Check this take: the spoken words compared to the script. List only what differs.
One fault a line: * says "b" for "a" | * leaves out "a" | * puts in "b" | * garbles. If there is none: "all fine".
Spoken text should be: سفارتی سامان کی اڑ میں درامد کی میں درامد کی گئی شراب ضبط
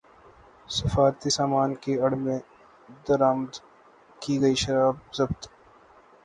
* leaves out "میں درامد کی"